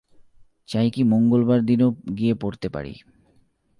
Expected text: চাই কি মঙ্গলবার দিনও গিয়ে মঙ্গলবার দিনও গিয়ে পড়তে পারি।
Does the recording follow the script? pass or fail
fail